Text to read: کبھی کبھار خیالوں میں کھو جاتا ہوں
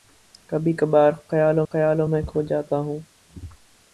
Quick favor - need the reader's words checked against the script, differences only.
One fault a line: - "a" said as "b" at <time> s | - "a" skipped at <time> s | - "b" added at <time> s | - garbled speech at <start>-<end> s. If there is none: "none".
- "خیالوں" added at 1.7 s